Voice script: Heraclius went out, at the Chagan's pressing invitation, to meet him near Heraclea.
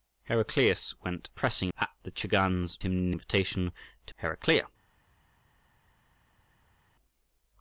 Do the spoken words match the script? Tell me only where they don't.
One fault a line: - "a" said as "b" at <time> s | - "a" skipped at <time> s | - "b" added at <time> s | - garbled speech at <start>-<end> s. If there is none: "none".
- "out" said as "pressing" at 1.3 s
- "pressing" said as "him" at 2.8 s
- "meet him near" skipped at 4.1 s